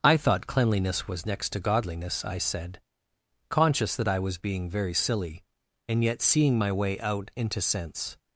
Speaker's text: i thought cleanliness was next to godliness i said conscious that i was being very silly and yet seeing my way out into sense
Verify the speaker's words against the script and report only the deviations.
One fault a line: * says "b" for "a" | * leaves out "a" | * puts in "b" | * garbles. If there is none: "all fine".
all fine